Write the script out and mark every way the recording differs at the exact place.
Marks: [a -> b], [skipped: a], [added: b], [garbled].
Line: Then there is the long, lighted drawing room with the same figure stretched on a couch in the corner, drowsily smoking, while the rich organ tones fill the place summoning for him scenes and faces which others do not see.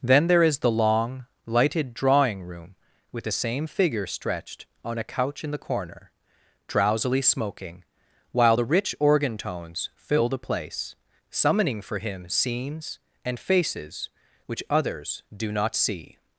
Then there is the long, lighted drawing room with the same figure stretched on a couch in the corner, drowsily smoking, while the rich organ tones fill the place summoning for him scenes and faces which others do not see.